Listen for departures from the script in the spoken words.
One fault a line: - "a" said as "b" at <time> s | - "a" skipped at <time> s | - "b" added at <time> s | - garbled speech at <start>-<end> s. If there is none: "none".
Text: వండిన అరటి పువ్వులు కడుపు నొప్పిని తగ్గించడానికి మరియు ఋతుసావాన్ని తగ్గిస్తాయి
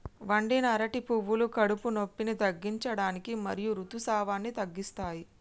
none